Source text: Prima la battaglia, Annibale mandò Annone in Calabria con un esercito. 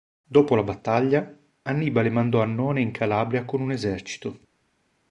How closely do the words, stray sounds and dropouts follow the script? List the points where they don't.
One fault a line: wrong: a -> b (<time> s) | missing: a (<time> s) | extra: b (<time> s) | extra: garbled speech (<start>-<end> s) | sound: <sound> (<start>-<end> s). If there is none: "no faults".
wrong: Prima -> Dopo (0.2 s)